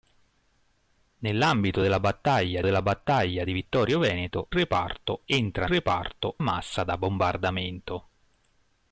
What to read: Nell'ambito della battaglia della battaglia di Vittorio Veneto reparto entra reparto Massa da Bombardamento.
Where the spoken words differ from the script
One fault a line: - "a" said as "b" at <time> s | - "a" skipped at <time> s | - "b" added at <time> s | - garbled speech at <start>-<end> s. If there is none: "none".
none